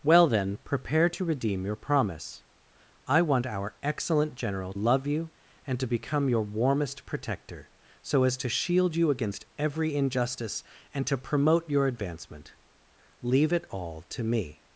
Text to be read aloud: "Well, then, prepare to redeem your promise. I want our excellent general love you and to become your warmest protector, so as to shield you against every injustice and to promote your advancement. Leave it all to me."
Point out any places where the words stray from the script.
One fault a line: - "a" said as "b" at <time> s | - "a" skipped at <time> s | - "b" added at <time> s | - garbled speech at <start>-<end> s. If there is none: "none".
none